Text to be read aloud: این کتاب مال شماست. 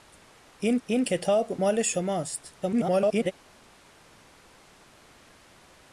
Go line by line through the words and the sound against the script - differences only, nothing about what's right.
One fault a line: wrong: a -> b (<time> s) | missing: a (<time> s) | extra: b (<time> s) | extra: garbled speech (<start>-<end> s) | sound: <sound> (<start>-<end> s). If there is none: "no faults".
extra: این (0.8 s)
extra: garbled speech (2.6-3.3 s)